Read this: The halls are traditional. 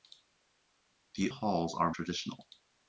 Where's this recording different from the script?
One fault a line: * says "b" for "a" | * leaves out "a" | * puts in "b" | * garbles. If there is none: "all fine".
all fine